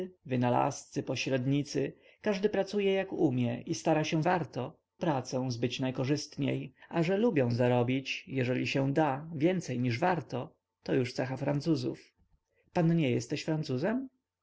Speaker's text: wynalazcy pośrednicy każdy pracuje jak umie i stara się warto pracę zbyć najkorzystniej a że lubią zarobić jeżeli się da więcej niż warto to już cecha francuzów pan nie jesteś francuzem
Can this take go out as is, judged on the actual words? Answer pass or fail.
pass